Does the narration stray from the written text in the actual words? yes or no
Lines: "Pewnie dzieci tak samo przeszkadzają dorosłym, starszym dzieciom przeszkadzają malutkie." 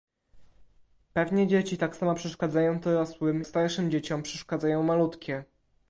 no